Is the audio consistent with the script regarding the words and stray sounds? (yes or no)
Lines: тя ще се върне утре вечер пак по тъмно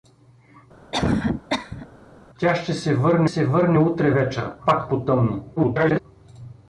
no